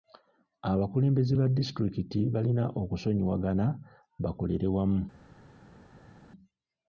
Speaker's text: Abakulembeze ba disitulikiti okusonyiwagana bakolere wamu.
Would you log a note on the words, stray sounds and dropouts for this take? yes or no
yes